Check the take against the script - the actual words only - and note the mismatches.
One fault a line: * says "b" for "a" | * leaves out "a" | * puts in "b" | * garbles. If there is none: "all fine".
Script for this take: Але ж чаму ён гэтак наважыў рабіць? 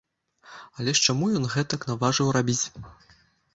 all fine